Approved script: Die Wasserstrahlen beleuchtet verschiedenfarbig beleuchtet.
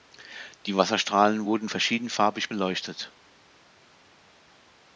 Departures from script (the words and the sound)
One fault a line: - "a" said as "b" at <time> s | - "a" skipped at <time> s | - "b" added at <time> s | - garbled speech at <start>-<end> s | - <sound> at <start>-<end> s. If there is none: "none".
- "beleuchtet" said as "wurden" at 1.4 s